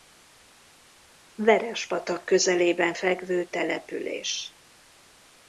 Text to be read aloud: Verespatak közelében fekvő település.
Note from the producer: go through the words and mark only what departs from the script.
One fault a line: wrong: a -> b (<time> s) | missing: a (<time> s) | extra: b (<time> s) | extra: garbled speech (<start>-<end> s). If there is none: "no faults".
no faults